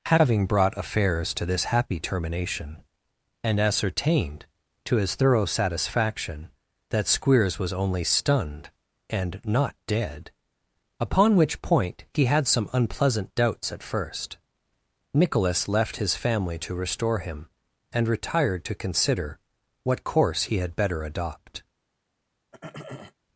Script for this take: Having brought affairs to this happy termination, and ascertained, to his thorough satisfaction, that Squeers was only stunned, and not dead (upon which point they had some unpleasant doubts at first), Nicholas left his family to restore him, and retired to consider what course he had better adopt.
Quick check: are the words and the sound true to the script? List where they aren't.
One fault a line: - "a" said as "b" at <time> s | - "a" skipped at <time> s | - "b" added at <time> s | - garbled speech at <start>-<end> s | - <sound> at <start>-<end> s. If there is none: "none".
- "they" said as "he" at 12.1 s
- throat clearing at 22.5-23.1 s